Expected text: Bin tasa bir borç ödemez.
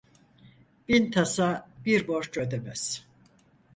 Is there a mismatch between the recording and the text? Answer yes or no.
no